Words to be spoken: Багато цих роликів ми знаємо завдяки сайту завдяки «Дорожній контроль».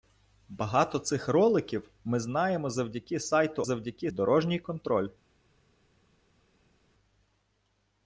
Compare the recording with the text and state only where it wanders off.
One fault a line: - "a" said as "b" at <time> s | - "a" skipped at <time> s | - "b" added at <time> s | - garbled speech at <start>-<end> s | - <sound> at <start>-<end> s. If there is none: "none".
none